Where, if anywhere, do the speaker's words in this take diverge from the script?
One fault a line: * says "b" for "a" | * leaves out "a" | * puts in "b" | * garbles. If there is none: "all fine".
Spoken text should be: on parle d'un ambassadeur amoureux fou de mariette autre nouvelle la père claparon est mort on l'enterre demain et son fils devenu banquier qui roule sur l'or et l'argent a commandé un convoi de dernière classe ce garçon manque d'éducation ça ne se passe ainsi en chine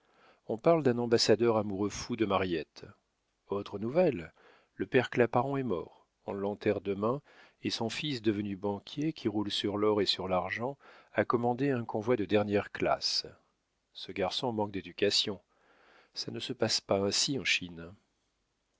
* says "le" for "la"
* puts in "sur"
* puts in "pas"